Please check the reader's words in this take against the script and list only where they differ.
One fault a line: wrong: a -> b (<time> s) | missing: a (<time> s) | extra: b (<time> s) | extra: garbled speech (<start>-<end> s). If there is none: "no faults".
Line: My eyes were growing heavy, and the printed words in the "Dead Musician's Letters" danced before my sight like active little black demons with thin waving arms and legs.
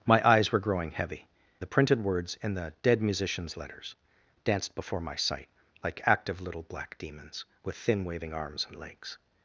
missing: and (1.3 s)